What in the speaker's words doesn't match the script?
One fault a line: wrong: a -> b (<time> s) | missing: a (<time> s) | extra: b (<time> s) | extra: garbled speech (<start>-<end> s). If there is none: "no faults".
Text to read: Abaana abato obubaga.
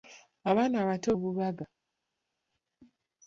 no faults